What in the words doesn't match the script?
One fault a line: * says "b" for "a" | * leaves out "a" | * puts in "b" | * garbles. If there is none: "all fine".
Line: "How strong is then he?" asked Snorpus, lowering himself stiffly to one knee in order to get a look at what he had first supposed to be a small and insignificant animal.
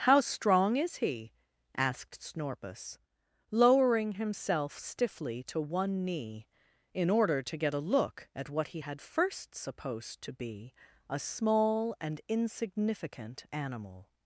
* leaves out "then"